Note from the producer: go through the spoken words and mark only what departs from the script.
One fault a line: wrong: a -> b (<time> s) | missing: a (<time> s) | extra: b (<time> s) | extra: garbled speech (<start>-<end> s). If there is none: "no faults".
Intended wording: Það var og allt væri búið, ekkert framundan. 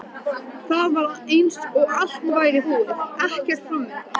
extra: eins (1.4 s)